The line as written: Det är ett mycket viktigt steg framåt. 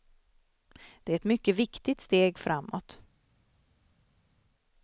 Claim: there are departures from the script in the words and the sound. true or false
false